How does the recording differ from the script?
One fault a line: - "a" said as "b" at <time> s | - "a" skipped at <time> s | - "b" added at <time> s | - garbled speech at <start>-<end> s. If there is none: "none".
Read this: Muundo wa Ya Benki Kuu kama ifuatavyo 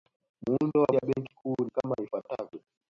none